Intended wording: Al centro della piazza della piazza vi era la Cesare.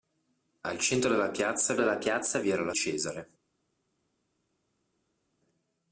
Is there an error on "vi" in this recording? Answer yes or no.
no